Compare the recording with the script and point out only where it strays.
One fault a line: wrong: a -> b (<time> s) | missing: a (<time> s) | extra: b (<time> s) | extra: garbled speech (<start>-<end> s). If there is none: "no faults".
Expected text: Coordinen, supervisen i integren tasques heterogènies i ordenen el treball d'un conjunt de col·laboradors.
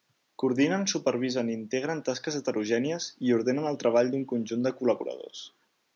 no faults